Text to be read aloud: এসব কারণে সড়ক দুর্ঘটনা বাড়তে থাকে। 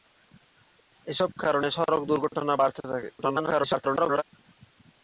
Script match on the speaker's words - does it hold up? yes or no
no